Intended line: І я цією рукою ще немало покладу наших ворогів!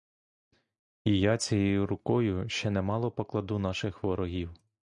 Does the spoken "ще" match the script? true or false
true